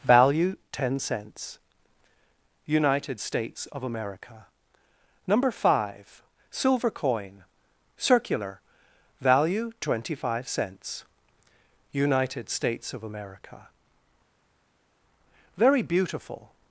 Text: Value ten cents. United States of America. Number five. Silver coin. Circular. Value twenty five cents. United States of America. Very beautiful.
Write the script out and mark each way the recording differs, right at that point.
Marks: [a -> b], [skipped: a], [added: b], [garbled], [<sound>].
Value ten cents. United States of America. Number five. Silver coin. Circular. Value twenty five cents. United States of America. Very beautiful.